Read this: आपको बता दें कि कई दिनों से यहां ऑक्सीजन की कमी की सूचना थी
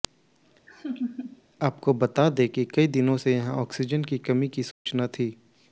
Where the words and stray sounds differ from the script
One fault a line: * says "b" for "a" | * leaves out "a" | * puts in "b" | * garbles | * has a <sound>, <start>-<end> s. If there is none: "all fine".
* has a laugh, 0.7-1.4 s
* has a dropout, 4.7-4.9 s